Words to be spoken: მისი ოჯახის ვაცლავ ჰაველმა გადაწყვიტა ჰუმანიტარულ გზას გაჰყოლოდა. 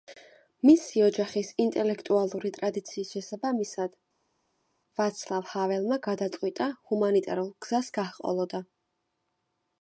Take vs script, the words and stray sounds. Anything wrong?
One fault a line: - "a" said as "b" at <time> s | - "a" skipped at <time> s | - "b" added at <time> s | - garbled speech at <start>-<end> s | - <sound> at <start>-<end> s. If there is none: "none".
- "ინტელექტუალური ტრადიციის შესაბამისად" added at 1.6 s